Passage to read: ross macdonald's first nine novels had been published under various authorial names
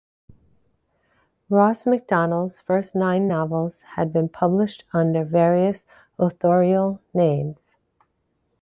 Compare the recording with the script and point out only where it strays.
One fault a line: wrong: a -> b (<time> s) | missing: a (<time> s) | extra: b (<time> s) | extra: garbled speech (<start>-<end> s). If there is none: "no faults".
no faults